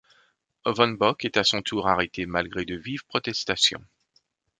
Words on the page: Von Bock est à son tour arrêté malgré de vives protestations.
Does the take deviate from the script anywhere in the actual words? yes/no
no